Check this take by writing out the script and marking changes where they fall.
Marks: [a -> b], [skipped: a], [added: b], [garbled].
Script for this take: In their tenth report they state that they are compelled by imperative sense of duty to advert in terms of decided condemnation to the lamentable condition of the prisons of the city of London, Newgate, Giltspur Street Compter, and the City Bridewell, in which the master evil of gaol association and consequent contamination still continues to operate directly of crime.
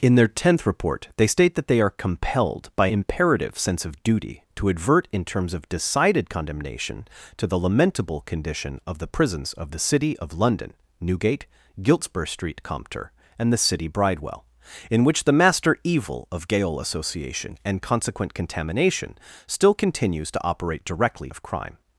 In their tenth report they state that they are compelled by imperative sense of duty to advert in terms of decided condemnation to the lamentable condition of the prisons of the city of London, Newgate, Giltspur Street Compter, and the City Bridewell, in which the master evil of gaol association and consequent contamination still continues to operate directly of crime.